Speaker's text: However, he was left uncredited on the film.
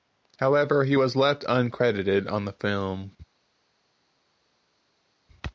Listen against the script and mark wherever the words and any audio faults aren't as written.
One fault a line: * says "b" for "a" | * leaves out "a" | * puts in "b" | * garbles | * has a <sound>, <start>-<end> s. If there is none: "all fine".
all fine